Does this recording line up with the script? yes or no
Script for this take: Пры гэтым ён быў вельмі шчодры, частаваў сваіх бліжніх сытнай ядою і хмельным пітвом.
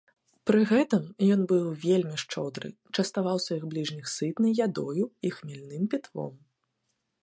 yes